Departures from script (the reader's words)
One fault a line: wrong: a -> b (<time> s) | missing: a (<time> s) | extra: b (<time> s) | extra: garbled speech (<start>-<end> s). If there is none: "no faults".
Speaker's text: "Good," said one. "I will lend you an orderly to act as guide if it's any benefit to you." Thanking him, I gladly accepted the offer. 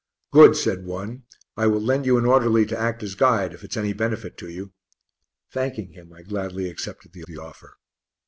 extra: the (7.3 s)